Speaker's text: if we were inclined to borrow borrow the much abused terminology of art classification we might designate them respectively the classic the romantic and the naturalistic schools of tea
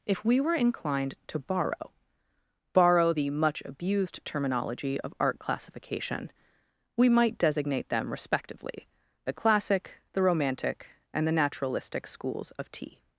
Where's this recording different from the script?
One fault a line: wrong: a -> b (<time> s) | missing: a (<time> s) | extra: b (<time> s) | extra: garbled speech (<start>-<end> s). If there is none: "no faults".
no faults